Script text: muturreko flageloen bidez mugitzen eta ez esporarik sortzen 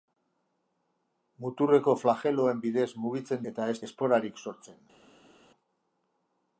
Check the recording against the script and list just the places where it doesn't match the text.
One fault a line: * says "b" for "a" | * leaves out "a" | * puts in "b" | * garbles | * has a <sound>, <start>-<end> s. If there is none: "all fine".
all fine